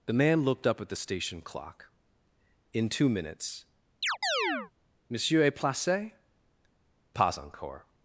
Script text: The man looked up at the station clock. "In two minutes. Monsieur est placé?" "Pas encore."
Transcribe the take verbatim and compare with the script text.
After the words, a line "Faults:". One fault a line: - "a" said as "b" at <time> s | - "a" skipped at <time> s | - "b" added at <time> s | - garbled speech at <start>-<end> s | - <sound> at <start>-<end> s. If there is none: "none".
The man looked up at the station clock. "In two minutes. Monsieur est placé?" "Pas encore."
Faults:
- chirp at 4.0-4.7 s